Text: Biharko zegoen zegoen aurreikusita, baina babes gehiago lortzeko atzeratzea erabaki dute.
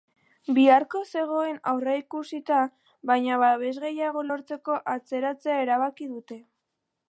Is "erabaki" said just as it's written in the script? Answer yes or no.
yes